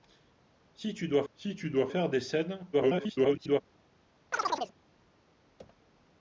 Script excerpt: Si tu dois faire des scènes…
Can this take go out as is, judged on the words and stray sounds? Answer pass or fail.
fail